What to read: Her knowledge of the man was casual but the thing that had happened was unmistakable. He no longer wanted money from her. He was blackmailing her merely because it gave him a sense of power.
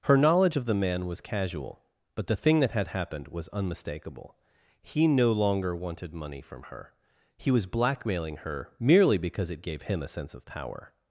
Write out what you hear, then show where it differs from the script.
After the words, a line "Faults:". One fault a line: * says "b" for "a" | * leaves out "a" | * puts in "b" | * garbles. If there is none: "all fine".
Her knowledge of the man was casual but the thing that had happened was unmistakable. He no longer wanted money from her. He was blackmailing her merely because it gave him a sense of power.
Faults:
all fine